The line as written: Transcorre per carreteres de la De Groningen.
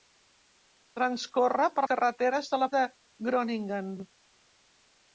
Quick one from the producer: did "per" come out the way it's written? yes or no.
yes